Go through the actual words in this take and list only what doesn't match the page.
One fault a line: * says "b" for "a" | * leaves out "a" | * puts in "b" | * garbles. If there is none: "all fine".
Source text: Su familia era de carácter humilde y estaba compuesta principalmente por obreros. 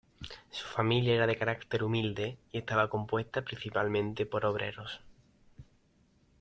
all fine